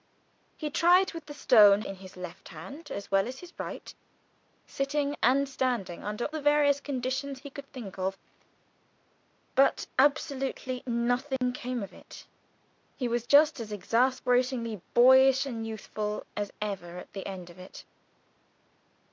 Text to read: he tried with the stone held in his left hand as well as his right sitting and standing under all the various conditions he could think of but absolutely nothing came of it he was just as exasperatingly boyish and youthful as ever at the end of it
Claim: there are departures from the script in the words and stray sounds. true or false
true